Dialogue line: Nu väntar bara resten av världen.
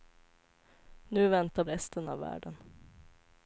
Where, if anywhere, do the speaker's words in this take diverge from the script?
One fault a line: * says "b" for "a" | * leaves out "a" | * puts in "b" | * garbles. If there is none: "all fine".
* leaves out "bara"